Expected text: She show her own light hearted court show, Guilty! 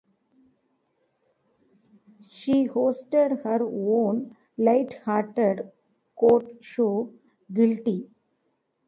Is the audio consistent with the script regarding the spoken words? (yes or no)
no